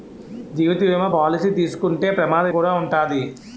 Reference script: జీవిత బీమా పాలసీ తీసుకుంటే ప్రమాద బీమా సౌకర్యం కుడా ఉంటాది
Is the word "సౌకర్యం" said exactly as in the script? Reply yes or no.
no